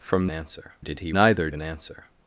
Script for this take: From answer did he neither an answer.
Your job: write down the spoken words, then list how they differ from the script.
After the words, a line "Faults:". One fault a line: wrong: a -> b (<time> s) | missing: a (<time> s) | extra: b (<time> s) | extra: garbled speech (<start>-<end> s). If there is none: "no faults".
From answer did he neither an answer.
Faults:
no faults